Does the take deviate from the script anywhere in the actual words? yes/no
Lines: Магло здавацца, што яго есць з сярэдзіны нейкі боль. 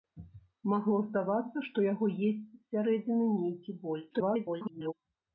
yes